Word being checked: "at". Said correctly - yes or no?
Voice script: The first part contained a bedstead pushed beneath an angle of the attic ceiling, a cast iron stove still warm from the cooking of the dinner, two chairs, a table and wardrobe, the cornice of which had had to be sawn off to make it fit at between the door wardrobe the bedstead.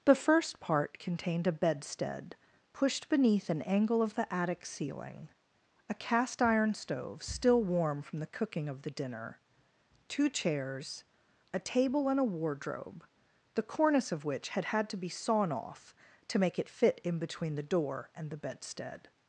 no